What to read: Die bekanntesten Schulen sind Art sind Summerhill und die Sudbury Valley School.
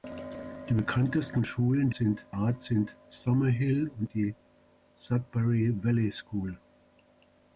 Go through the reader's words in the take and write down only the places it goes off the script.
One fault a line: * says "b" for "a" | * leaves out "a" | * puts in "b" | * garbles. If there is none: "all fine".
all fine